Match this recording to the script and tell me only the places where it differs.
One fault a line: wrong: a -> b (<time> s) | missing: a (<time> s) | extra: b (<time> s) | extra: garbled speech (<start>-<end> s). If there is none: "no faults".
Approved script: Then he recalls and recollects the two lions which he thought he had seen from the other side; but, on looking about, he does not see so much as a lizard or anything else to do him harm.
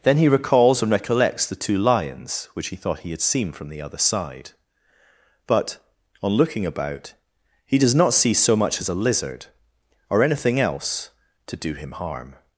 no faults